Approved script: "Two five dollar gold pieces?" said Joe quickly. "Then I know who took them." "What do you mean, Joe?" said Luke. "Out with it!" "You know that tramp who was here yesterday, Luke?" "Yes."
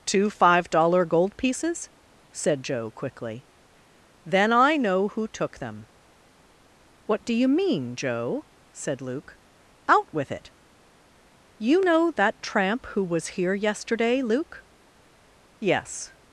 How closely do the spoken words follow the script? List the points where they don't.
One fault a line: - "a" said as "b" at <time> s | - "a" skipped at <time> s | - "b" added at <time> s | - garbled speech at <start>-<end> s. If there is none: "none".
none